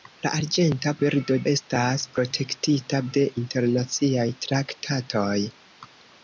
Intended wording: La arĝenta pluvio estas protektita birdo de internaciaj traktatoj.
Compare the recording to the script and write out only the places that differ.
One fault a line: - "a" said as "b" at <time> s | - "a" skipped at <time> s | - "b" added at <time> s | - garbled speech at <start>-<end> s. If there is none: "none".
- "pluvio" said as "birdo" at 1.0 s
- "birdo" skipped at 3.0 s